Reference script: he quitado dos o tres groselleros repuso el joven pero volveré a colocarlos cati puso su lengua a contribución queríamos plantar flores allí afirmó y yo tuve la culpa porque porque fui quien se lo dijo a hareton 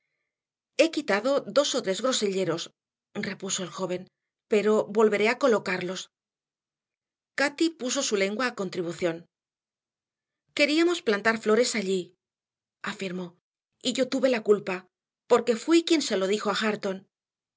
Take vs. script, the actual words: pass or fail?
fail